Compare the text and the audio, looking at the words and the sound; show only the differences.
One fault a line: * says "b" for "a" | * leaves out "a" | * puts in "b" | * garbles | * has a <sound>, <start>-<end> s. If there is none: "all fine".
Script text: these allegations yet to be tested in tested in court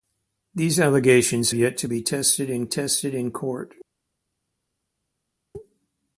all fine